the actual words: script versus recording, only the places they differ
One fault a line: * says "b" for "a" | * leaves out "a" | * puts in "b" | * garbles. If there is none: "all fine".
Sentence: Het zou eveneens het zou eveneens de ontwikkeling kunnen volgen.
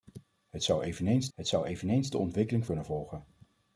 all fine